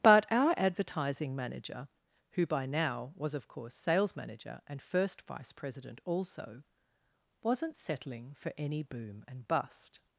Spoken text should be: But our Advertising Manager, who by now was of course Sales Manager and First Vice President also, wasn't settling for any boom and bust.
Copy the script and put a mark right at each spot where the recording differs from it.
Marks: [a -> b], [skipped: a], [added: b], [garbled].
But our Advertising Manager, who by now was of course Sales Manager and First Vice President also, wasn't settling for any boom and bust.